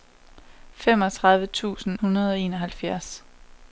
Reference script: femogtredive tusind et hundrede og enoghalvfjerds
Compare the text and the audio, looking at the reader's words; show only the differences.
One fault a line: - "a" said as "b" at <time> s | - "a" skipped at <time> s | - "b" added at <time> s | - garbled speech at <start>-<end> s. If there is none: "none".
- "et" skipped at 2.0 s